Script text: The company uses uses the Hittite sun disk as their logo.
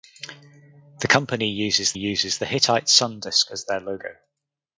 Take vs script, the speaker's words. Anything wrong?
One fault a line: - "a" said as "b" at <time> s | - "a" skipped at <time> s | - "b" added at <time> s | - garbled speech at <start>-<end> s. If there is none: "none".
none